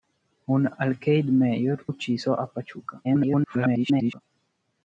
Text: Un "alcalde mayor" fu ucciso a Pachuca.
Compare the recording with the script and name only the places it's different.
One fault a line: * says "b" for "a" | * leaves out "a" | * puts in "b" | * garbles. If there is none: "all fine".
* leaves out "fu"
* garbles